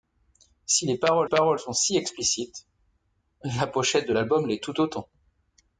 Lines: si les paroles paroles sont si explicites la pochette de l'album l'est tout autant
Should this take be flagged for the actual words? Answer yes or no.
no